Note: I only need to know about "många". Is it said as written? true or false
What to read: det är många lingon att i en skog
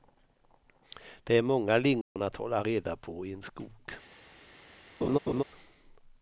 true